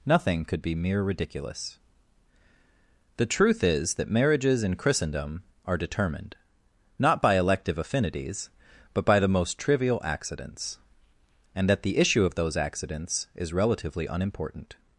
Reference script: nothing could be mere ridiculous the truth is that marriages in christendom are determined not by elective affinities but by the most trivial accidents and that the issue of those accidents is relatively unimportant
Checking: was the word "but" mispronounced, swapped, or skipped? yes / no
no